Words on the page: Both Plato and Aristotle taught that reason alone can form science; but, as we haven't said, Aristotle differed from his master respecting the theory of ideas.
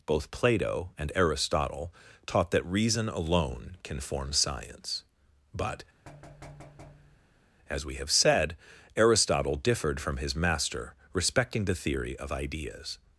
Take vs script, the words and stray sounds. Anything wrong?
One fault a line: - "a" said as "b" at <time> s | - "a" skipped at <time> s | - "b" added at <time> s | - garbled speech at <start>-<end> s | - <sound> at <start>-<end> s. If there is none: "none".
- thud at 6.1-7.4 s
- "haven't" said as "have" at 8.0 s